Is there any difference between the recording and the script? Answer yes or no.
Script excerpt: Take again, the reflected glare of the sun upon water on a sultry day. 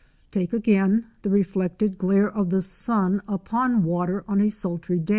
no